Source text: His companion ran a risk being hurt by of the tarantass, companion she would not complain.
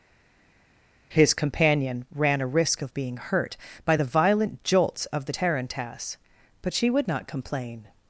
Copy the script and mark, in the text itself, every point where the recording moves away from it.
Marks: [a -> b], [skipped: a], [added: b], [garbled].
His companion ran a risk [added: of] being hurt by [added: the violent jolts] of the tarantass, [companion -> but] she would not complain.